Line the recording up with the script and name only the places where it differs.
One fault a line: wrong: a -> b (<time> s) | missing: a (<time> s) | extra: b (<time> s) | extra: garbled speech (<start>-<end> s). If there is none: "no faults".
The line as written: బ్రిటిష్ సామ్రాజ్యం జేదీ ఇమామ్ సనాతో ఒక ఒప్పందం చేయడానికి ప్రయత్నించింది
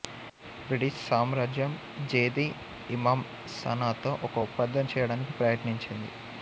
no faults